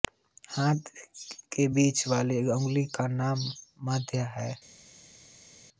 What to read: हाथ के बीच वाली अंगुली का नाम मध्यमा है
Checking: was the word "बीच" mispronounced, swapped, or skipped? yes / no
no